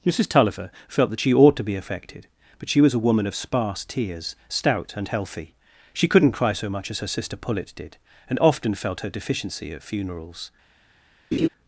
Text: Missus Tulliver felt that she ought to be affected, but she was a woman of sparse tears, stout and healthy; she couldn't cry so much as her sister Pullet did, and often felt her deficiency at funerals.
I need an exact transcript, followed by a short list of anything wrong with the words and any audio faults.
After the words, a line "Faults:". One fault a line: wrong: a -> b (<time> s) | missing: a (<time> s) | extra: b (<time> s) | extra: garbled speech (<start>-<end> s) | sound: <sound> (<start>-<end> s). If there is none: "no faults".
Missus Tulliver felt that she ought to be affected, but she was a woman of sparse tears, stout and healthy; she couldn't cry so much as her sister Pullet did, and often felt her deficiency at funerals.
Faults:
sound: laugh (11.3-11.5 s)